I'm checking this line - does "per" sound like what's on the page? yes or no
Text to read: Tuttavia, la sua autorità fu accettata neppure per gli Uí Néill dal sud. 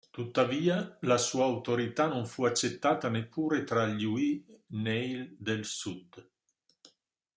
no